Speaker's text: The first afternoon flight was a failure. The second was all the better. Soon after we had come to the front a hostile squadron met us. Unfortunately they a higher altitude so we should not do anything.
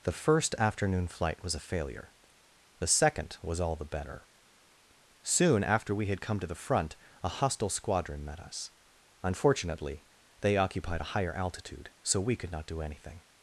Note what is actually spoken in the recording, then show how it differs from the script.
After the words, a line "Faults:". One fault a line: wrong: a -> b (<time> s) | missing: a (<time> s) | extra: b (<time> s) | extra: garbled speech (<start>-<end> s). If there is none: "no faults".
The first afternoon flight was a failure. The second was all the better. Soon after we had come to the front a hostile squadron met us. Unfortunately they occupied a higher altitude so we could not do anything.
Faults:
extra: occupied (10.6 s)
wrong: should -> could (12.4 s)